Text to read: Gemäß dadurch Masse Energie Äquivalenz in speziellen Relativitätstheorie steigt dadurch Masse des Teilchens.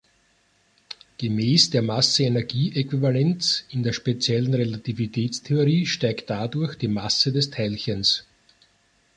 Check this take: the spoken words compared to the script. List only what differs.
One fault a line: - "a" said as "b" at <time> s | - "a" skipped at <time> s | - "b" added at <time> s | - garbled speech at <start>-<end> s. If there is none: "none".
- "dadurch" said as "der" at 1.7 s
- "der" added at 3.8 s
- "die" added at 6.8 s